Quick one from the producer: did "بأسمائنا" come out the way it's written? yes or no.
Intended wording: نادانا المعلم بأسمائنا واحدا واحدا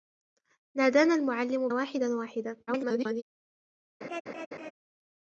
no